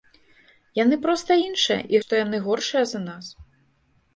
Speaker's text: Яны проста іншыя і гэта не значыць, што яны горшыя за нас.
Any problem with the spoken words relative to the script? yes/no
yes